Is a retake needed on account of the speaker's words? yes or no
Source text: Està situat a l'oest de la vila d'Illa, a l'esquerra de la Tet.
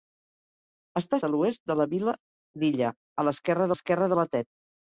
yes